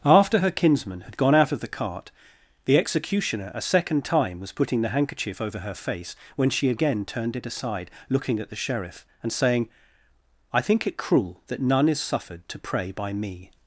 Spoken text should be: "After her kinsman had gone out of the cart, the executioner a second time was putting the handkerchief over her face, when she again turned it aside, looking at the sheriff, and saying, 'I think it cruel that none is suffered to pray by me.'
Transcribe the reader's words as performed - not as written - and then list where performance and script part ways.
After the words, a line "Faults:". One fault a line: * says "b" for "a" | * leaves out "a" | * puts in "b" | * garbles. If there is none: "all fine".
"After her kinsman had gone out of the cart, the executioner a second time was putting the handkerchief over her face, when she again turned it aside, looking at the sheriff, and saying, 'I think it cruel that none is suffered to pray by me.'
Faults:
all fine